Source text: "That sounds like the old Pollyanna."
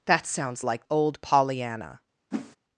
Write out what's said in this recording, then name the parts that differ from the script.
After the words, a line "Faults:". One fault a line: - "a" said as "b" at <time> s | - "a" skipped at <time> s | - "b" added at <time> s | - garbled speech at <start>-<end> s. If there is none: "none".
"That sounds like old Pollyanna."
Faults:
- "the" skipped at 0.9 s